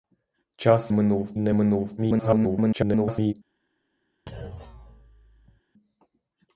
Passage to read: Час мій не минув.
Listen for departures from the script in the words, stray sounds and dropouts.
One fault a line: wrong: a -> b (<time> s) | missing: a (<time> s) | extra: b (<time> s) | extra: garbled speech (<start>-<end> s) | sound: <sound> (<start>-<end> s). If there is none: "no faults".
wrong: мій -> минув (0.9 s)
extra: garbled speech (2.0-3.3 s)
sound: thud (4.3-5.6 s)